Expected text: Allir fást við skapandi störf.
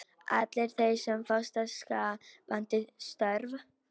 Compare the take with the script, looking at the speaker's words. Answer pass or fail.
fail